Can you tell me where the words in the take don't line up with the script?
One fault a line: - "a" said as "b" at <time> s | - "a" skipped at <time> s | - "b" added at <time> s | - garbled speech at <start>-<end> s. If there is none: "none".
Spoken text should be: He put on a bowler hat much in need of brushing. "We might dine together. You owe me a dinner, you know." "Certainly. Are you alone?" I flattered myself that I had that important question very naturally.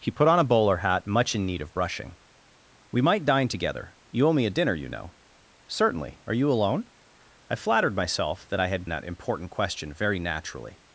none